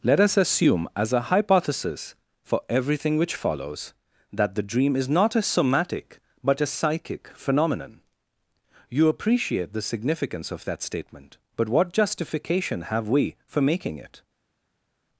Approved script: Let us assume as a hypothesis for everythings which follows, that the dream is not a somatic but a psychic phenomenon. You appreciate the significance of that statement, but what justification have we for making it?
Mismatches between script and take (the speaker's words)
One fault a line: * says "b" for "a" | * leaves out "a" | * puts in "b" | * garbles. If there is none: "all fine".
* says "everything" for "everythings"